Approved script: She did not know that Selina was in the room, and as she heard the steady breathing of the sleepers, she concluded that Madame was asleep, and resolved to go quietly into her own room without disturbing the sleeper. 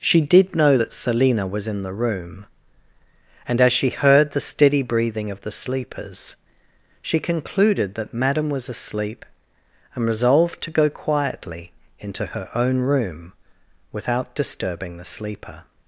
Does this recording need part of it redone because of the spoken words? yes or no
yes